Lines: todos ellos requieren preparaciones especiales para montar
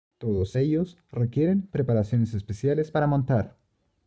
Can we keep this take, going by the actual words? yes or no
yes